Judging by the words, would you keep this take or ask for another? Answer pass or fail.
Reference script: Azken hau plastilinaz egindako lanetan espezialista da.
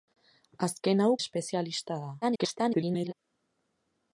fail